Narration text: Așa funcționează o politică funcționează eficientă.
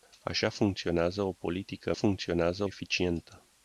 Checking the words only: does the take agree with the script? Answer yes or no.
yes